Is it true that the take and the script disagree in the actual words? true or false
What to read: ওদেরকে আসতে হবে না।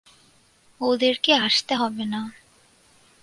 false